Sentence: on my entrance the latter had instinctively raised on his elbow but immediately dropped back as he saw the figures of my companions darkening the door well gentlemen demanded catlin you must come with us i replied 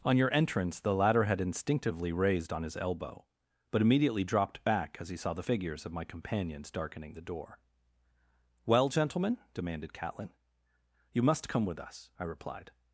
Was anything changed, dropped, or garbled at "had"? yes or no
no